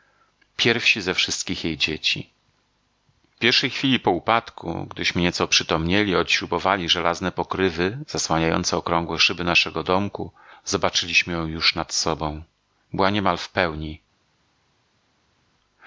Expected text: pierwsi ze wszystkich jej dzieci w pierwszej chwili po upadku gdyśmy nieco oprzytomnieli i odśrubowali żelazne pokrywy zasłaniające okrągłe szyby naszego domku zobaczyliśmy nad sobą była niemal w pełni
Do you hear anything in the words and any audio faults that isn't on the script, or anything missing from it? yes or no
yes